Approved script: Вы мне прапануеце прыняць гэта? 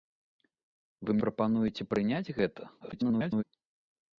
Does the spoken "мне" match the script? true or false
false